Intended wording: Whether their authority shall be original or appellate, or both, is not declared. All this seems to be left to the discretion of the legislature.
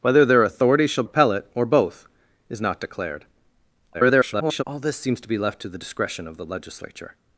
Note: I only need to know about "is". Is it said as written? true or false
true